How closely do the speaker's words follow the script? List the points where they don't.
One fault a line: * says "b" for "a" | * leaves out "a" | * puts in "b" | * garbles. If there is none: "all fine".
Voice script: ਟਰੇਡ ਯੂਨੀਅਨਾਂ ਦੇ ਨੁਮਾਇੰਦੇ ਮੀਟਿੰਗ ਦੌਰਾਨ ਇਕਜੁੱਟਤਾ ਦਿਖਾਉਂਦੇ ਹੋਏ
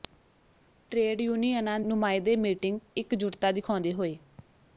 * leaves out "ਦੇ"
* leaves out "ਦੌਰਾਨ"